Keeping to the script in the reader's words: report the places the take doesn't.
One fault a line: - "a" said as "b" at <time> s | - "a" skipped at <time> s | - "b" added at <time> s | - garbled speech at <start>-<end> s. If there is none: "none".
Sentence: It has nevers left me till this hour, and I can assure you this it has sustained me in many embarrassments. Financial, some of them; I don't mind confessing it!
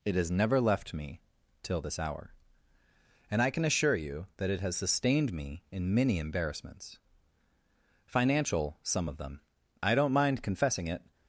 - "nevers" said as "never" at 0.3 s
- "this" said as "that" at 4.4 s